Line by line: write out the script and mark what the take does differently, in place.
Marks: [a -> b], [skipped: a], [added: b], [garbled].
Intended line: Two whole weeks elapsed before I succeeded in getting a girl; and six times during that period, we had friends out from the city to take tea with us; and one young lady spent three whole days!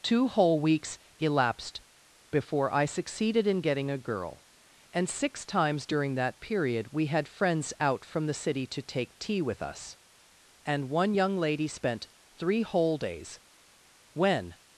Two whole weeks elapsed before I succeeded in getting a girl; and six times during that period, we had friends out from the city to take tea with us; and one young lady spent three whole days! [added: When]